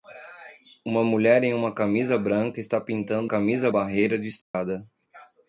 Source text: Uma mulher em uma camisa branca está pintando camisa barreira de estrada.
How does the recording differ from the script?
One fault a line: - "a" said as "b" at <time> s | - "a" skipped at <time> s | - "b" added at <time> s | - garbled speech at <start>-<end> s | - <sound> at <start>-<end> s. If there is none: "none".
- dropout at 4.4-4.5 s